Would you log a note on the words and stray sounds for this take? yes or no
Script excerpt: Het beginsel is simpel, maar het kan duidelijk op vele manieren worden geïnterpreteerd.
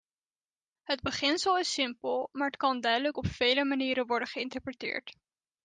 no